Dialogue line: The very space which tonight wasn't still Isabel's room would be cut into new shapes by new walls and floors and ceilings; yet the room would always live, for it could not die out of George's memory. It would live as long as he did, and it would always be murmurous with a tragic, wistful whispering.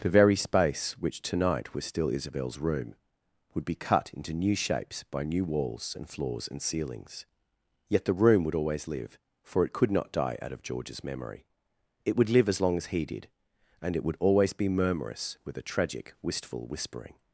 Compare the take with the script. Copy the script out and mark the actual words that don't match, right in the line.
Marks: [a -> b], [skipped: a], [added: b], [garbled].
The very space which tonight [wasn't -> was] still Isabel's room would be cut into new shapes by new walls and floors and ceilings; yet the room would always live, for it could not die out of George's memory. It would live as long as he did, and it would always be murmurous with a tragic, wistful whispering.